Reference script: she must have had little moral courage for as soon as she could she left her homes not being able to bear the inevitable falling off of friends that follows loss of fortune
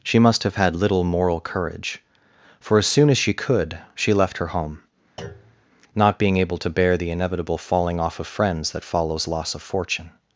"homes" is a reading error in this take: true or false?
true